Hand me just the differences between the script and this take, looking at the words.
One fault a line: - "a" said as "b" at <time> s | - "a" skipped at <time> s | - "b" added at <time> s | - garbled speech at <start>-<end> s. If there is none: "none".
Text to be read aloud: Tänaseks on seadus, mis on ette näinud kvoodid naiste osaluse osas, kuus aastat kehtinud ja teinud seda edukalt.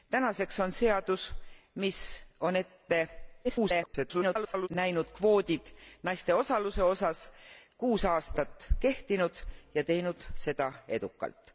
- garbled speech at 3.4-4.7 s